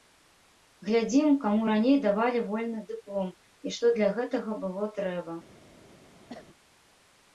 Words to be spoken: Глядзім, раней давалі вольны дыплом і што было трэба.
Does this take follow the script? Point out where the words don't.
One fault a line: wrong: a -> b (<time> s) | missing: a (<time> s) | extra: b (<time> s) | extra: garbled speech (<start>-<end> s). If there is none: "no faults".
extra: каму (1.4 s)
extra: для гэтага (4.0 s)